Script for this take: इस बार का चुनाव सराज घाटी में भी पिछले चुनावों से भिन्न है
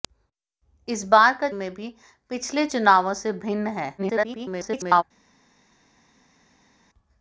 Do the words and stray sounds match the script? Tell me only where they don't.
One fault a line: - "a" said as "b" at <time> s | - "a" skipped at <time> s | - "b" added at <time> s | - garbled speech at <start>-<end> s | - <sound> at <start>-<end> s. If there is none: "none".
- "चुनाव सराज घाटी" skipped at 1.5 s
- garbled speech at 4.0-5.0 s